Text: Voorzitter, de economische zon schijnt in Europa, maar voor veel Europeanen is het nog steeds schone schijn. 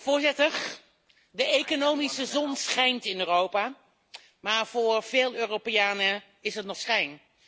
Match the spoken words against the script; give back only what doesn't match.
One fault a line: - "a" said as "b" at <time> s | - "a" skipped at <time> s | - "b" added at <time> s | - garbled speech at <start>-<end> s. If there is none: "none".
- "steeds schone" skipped at 6.8 s